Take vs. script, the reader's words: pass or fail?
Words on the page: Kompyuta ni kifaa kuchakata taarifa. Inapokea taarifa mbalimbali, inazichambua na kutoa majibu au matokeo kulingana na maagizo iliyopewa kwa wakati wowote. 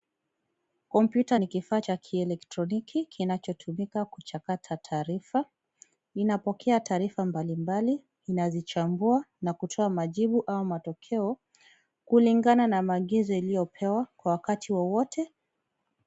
fail